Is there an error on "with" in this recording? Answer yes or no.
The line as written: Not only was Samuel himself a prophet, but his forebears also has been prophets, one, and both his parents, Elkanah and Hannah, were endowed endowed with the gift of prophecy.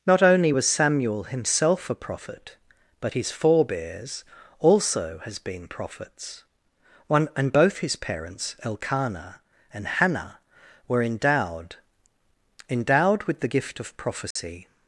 no